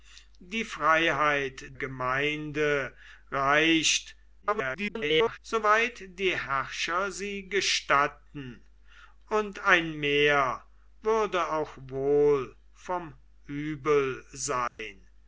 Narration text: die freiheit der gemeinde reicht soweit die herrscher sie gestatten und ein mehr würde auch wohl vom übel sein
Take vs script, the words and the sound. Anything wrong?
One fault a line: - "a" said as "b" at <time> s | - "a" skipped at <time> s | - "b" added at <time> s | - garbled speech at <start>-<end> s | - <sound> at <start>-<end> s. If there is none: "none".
- "der" skipped at 1.6 s
- garbled speech at 4.4-5.4 s
- dropout at 14.7-14.8 s